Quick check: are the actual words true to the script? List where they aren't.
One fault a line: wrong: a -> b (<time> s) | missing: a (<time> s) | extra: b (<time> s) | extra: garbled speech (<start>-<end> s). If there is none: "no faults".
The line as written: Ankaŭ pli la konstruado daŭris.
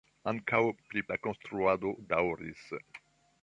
no faults